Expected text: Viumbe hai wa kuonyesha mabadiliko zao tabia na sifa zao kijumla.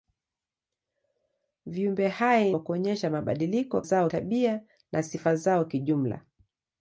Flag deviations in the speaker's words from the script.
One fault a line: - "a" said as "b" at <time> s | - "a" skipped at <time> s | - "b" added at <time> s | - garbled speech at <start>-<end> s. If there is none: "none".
none